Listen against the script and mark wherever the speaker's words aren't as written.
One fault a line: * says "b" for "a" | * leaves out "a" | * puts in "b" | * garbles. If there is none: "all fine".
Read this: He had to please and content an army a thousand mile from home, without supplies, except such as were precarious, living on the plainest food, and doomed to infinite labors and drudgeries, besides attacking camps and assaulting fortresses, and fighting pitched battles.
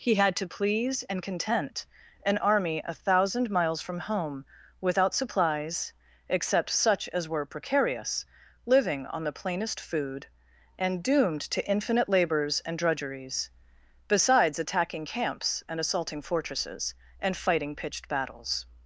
* says "miles" for "mile"